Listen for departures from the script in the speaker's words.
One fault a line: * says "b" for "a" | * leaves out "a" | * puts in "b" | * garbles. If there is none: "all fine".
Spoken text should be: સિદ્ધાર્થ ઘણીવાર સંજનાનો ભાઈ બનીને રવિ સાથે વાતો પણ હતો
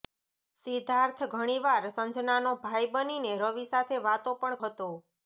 all fine